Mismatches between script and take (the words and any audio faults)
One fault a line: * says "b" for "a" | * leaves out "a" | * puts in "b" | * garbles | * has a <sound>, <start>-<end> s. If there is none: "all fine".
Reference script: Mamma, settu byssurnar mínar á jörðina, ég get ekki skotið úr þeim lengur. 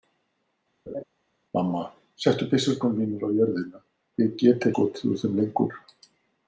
* has a laugh, 0.9-1.0 s
* leaves out "ekki"